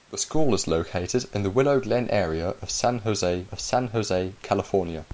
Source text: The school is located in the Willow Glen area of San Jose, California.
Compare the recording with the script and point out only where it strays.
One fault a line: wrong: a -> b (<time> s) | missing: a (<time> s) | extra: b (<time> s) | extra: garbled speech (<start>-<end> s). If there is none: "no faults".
extra: of San Jose (3.5 s)